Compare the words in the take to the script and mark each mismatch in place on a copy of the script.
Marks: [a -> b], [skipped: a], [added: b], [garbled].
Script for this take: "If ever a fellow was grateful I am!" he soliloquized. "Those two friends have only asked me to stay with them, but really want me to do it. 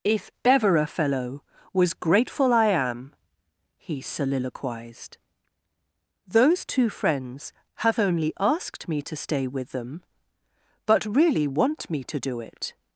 "If ever a fellow was grateful I am!" he soliloquized. "Those two friends have only asked me to stay with them, but really want me to do it.